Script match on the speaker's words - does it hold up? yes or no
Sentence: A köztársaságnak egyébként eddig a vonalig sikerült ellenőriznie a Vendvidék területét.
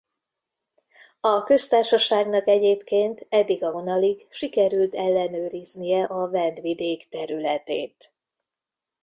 yes